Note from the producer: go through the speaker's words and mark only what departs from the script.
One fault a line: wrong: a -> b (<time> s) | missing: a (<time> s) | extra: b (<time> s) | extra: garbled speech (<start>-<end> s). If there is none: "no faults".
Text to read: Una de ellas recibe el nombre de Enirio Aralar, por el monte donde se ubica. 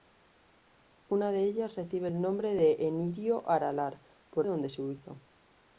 missing: el monte (4.5 s)